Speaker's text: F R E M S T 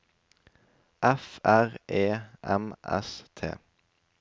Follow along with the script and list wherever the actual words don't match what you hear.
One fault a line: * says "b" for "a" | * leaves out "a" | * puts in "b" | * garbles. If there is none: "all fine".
all fine